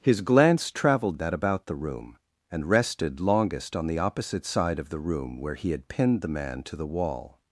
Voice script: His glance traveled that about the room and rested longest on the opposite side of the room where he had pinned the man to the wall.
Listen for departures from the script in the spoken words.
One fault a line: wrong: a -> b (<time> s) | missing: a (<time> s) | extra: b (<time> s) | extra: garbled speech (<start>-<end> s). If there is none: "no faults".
no faults